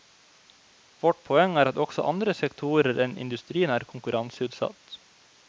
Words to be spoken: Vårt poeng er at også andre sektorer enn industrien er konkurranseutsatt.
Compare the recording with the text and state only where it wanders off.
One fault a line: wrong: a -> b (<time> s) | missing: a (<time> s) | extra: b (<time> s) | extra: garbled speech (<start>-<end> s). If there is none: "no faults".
no faults